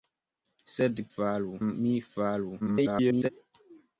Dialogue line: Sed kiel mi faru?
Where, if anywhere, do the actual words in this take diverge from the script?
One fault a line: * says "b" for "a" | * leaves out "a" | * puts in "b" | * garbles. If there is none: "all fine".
* says "faru" for "kiel"
* garbles